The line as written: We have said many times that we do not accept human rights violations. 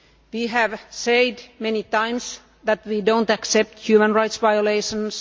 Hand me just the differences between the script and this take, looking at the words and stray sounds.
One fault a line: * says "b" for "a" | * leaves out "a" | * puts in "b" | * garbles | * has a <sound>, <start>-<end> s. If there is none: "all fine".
all fine